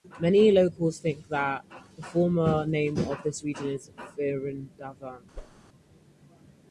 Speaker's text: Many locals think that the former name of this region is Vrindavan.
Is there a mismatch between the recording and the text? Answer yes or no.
no